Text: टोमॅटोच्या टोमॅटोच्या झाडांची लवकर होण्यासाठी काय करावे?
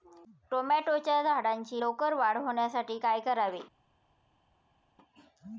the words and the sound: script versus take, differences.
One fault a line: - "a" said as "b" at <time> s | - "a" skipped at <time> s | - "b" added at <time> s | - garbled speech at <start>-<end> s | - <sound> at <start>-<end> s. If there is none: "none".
- "टोमॅटोच्या" skipped at 1.2 s
- "वाढ" added at 2.1 s